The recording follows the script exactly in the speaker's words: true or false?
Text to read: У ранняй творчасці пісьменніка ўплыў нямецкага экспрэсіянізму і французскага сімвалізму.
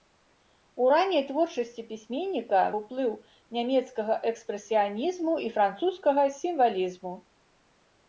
true